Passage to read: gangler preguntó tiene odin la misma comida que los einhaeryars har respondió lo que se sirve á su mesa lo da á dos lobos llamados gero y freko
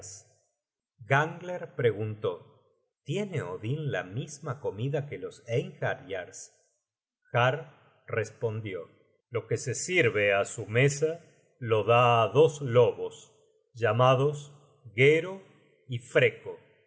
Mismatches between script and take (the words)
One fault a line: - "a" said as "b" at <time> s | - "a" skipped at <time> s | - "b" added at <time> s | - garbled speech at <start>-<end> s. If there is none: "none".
none